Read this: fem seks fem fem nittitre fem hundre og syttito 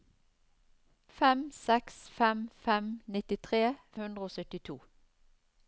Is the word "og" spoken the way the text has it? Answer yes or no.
yes